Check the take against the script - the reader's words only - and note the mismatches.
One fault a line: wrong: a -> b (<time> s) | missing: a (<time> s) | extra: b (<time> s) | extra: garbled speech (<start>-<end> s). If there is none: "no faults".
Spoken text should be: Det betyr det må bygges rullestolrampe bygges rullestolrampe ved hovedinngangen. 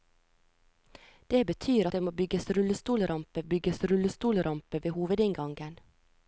no faults